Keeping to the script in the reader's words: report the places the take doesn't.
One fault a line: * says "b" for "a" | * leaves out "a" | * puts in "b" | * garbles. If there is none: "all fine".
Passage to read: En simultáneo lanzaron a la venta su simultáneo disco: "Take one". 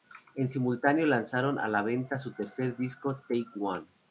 * says "tercer" for "simultáneo"